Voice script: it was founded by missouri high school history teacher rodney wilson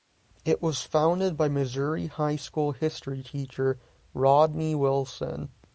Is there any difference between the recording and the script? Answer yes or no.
no